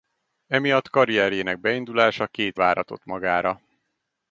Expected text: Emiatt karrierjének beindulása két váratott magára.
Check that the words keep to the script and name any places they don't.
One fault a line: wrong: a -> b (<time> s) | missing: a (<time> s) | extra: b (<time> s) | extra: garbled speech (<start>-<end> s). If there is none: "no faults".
no faults